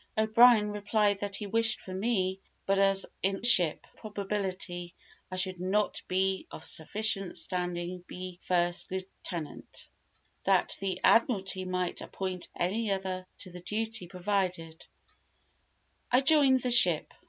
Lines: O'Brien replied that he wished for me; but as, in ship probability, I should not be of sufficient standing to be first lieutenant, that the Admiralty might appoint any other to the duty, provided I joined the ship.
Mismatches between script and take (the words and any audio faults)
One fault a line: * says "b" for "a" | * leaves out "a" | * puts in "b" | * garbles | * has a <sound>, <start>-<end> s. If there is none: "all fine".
all fine